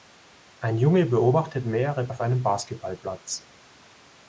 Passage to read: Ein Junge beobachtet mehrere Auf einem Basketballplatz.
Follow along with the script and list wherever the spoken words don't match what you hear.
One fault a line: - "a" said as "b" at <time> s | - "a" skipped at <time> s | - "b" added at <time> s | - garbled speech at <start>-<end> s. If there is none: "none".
none